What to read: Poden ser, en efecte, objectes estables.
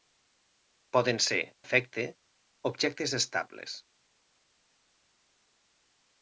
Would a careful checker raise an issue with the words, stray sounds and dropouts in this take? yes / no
yes